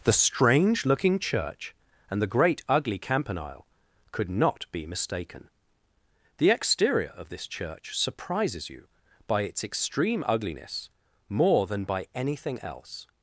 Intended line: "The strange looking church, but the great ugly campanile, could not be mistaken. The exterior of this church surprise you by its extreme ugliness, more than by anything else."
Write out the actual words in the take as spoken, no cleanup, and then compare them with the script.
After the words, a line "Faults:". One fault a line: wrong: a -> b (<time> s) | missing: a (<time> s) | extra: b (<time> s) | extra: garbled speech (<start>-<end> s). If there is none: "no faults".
"The strange looking church, and the great ugly campanile, could not be mistaken. The exterior of this church surprises you by its extreme ugliness, more than by anything else."
Faults:
wrong: but -> and (2.1 s)
wrong: surprise -> surprises (8.0 s)